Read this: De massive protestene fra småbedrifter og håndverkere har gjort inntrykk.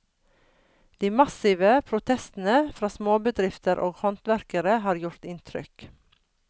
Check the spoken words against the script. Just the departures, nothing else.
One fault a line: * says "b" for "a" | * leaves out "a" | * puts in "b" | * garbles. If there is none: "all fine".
all fine